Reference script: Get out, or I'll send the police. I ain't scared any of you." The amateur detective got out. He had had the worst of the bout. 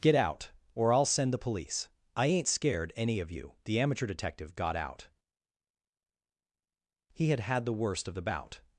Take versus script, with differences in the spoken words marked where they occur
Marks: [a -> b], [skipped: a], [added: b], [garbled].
Get out, or I'll send the police. I ain't scared any of you." The amateur detective got out. He had had the worst of the bout.